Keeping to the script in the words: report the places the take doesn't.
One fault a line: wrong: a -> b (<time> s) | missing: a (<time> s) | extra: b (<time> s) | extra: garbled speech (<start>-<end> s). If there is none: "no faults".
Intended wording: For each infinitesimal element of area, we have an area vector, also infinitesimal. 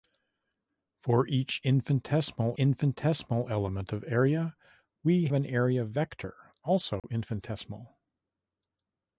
extra: infinitesimal (2.6 s)
missing: have (5.3 s)